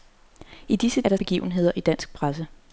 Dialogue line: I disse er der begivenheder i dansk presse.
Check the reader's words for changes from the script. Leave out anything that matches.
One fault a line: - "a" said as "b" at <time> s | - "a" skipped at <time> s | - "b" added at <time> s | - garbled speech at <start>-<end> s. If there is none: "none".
none